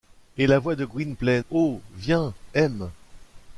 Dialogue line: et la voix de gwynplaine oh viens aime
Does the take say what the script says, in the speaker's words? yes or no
yes